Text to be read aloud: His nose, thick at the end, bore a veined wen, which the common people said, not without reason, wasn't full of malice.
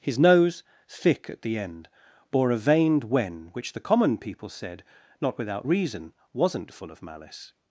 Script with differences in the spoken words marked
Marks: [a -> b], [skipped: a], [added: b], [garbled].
His nose, thick at the end, bore a veined wen, which the common people said, not without reason, wasn't full of malice.